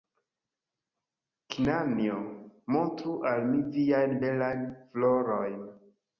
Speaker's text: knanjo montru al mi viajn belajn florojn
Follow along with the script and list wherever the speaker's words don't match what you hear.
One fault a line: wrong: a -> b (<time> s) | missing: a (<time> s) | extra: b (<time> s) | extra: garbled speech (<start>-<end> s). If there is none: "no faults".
no faults